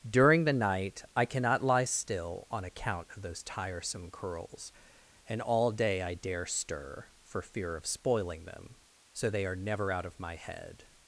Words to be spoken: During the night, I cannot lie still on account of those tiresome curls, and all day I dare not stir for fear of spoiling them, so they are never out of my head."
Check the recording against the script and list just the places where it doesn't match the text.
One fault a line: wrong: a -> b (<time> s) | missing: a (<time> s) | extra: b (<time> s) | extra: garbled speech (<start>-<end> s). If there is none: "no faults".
missing: not (6.5 s)